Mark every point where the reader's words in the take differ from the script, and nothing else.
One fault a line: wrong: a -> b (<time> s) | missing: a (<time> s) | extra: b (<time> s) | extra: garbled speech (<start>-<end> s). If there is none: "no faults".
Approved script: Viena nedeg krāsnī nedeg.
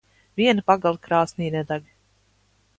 wrong: nedeg -> pagale (0.7 s)